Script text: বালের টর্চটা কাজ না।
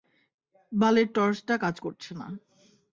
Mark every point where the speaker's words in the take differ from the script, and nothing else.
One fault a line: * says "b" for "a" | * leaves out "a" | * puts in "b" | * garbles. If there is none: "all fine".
* puts in "করছে"